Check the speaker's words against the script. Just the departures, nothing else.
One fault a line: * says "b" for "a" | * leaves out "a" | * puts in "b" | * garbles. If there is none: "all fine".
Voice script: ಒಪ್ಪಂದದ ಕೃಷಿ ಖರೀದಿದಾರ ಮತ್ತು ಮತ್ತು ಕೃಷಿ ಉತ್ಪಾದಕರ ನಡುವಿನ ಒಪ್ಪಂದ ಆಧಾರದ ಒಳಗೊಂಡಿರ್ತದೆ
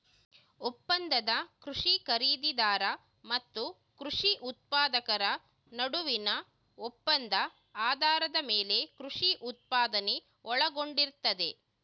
* leaves out "ಮತ್ತು"
* puts in "ಮೇಲೆ ಕೃಷಿ ಉತ್ಪಾದನೆ"